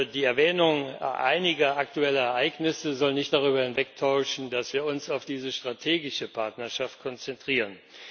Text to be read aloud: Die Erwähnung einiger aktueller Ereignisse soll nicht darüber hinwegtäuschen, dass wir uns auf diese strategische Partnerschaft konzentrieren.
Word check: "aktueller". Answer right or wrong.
right